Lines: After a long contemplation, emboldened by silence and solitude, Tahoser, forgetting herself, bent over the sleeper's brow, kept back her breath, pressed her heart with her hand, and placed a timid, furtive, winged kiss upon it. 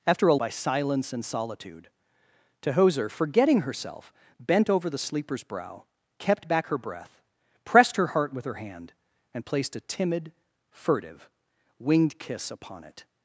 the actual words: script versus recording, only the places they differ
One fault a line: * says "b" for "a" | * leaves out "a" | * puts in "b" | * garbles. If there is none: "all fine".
* leaves out "long contemplation emboldened"